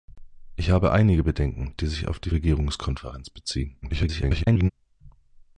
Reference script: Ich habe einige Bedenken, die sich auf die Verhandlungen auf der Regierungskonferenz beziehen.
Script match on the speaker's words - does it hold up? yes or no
no